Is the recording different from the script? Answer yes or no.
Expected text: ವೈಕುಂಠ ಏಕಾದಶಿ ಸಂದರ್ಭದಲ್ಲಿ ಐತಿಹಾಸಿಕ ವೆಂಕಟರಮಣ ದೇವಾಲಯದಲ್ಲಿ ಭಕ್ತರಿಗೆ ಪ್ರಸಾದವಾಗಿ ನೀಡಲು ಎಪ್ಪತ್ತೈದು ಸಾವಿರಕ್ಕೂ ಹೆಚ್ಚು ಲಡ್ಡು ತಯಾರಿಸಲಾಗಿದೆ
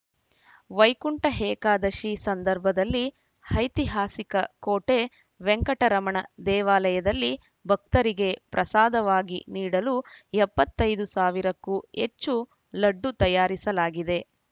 yes